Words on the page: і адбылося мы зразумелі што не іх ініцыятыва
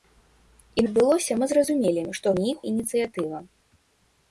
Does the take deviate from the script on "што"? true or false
false